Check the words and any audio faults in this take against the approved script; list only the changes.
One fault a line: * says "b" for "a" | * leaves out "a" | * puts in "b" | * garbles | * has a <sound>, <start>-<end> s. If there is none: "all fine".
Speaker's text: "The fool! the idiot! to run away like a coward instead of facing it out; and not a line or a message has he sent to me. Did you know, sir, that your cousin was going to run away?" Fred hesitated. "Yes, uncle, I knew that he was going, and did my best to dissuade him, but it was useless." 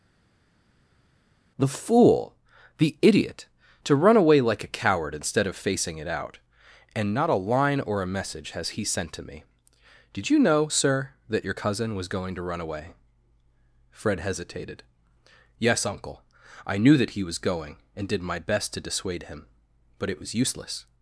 all fine